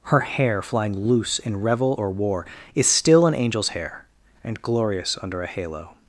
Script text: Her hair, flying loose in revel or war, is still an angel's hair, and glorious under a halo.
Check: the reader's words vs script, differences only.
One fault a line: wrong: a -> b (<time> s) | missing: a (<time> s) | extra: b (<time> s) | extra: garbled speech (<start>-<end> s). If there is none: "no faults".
no faults